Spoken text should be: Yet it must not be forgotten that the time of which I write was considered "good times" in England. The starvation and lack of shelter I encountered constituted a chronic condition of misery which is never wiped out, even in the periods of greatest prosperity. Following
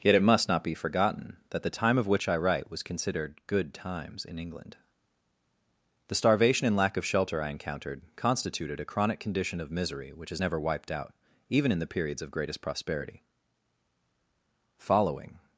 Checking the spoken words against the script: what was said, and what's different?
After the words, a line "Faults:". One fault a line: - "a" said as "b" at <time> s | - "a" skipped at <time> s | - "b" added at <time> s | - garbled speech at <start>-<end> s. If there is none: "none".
Yet it must not be forgotten that the time of which I write was considered "good times" in England. The starvation and lack of shelter I encountered constituted a chronic condition of misery which is never wiped out, even in the periods of greatest prosperity. Following
Faults:
none